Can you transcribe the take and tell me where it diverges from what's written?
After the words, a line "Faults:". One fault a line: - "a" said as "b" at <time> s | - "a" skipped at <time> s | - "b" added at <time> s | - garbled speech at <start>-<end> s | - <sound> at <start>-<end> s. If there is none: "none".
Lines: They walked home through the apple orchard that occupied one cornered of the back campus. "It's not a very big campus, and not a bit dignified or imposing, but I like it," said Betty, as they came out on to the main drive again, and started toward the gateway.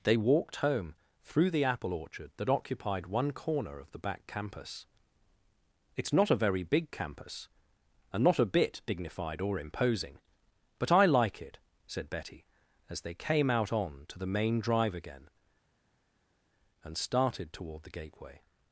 They walked home through the apple orchard that occupied one corner of the back campus. "It's not a very big campus, and not a bit dignified or imposing, but I like it," said Betty, as they came out on to the main drive again, and started toward the gateway.
Faults:
- "cornered" said as "corner" at 3.3 s